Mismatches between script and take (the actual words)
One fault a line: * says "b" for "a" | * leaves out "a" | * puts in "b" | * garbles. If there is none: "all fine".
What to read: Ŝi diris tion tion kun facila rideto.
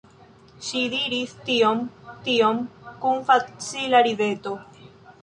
all fine